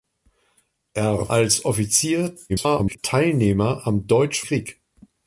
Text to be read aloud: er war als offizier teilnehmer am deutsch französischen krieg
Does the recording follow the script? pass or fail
fail